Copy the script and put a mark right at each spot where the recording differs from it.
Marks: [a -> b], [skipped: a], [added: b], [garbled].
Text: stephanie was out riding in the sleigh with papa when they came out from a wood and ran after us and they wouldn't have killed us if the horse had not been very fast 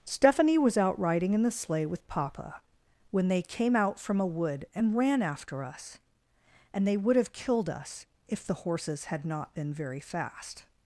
stephanie was out riding in the sleigh with papa when they came out from a wood and ran after us and they [wouldn't -> would] have killed us if the [horse -> horses] had not been very fast